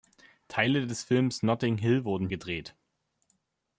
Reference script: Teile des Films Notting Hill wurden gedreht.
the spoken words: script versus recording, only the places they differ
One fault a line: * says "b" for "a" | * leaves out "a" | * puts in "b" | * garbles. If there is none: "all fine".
all fine